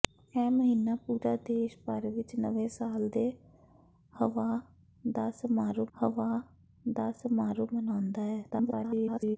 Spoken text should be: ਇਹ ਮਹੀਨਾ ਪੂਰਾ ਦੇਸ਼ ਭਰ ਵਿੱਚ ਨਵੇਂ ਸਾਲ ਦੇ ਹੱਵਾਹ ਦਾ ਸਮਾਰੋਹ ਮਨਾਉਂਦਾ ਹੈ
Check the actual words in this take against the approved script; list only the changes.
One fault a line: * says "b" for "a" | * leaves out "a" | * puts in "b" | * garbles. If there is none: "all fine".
* puts in "ਹੱਵਾਹ ਦਾ ਸਮਾਰੋਹ"
* garbles